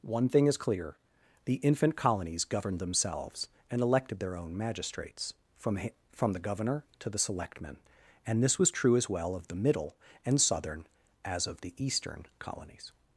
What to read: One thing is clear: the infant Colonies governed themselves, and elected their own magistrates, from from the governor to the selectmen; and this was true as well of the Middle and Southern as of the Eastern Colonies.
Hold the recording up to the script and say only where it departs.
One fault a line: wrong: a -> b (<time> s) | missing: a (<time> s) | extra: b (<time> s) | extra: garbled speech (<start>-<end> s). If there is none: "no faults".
no faults